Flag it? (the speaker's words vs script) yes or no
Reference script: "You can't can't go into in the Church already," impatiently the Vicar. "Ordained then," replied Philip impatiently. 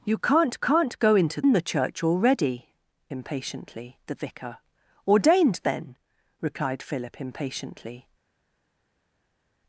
no